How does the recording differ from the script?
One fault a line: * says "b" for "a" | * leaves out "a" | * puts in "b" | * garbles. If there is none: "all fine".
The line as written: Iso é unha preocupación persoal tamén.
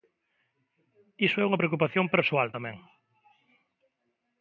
all fine